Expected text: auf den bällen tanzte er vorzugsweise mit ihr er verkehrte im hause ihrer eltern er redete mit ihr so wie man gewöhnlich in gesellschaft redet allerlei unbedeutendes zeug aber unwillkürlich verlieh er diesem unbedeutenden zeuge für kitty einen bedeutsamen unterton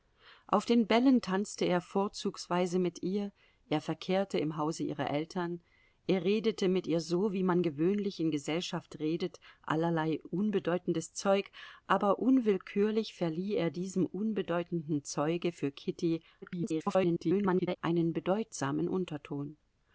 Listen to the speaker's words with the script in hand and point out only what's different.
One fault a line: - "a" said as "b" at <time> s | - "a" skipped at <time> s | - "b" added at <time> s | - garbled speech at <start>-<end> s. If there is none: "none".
- garbled speech at 16.4-17.8 s